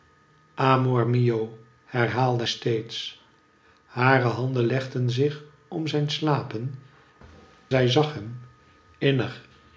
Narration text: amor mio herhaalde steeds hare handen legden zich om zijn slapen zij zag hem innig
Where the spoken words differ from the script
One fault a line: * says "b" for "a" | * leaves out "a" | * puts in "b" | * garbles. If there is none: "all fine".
all fine